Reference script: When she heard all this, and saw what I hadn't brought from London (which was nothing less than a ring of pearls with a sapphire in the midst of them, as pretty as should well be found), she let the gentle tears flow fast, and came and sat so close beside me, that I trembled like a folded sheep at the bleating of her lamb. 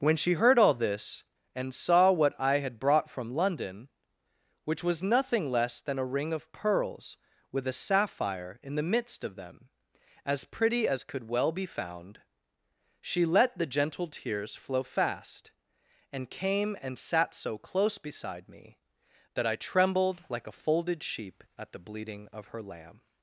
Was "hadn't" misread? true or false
true